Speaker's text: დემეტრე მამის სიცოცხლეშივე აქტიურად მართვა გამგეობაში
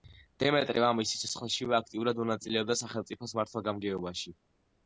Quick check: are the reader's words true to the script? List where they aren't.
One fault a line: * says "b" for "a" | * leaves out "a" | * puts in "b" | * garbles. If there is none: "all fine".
* puts in "მონაწილეობდა სახელმწიფოს"